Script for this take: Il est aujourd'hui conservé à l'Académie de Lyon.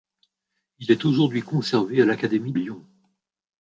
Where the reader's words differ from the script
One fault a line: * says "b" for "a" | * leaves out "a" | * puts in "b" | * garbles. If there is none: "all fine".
* leaves out "de"